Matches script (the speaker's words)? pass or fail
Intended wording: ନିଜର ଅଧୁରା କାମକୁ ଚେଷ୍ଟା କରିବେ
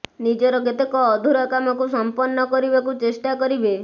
fail